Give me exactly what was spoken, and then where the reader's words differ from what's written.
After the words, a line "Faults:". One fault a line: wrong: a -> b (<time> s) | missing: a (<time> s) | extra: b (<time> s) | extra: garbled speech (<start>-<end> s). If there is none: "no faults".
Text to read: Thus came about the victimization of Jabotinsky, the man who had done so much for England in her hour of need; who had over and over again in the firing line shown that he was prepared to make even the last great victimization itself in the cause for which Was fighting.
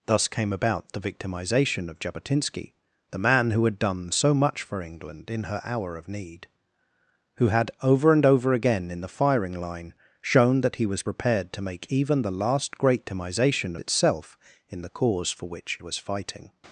Thus came about the victimization of Jabotinsky, the man who had done so much for England in her hour of need; who had over and over again in the firing line shown that he was prepared to make even the last great victimization itself in the cause for which Was fighting.
Faults:
no faults